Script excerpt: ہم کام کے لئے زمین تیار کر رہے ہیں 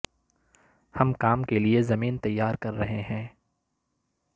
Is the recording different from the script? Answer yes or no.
no